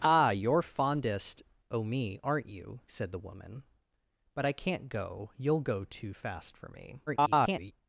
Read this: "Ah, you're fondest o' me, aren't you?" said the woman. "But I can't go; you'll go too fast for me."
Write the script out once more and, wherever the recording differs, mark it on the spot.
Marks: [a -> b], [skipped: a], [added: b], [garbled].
"Ah, you're fondest o' me, aren't you?" said the woman. "But I can't go; you'll go too fast for me." [garbled]